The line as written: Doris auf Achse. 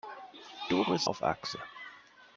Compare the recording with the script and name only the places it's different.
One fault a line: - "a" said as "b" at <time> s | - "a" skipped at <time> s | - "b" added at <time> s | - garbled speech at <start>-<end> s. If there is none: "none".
none